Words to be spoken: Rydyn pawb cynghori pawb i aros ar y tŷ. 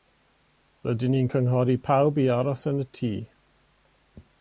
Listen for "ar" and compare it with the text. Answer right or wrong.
wrong